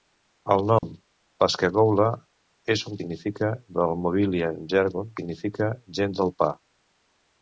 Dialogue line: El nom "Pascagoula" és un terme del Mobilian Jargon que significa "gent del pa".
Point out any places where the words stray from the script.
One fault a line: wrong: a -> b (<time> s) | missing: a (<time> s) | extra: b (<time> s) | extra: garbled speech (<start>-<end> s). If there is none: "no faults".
wrong: terme -> significa (3.0 s)
missing: que (5.2 s)